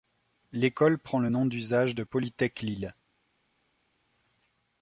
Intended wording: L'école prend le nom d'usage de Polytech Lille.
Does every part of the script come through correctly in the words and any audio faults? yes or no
yes